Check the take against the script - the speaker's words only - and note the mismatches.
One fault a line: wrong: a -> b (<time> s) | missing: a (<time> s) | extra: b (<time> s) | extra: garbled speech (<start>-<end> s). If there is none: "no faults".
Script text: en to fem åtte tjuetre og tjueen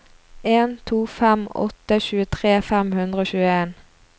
extra: fem hundre (2.7 s)